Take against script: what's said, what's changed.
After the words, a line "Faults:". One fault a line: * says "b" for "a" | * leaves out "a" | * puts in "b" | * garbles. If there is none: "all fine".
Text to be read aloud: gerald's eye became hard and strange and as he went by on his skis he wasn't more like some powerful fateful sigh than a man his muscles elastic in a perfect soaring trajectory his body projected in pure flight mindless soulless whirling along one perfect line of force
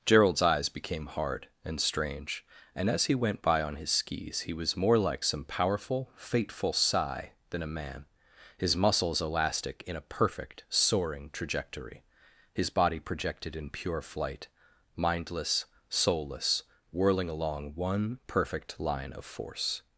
gerald's eyes became hard and strange and as he went by on his skis he was more like some powerful fateful sigh than a man his muscles elastic in a perfect soaring trajectory his body projected in pure flight mindless soulless whirling along one perfect line of force
Faults:
* says "eyes" for "eye"
* says "was" for "wasn't"